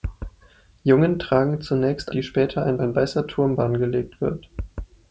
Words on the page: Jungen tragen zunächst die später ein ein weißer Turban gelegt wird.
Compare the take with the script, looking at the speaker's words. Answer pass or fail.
pass